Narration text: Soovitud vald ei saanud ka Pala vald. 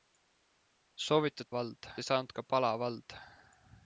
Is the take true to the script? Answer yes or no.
yes